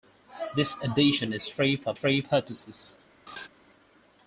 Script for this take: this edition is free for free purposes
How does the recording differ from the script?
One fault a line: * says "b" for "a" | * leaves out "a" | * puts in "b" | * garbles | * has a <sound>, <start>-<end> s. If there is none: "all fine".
* has a laugh, 3.3-3.5 s